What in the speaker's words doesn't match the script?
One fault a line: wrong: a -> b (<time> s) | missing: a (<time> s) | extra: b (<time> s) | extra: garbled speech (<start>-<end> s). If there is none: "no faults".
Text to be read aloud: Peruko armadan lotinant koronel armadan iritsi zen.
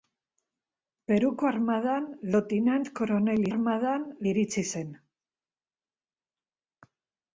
no faults